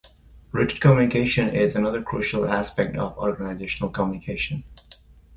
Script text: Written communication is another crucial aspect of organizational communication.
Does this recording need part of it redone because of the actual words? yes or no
no